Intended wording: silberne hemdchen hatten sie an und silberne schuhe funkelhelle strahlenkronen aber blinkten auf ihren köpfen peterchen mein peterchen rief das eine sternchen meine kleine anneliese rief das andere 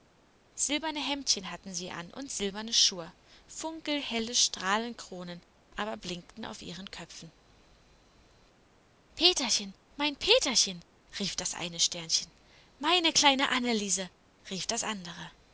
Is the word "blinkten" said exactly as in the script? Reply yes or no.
yes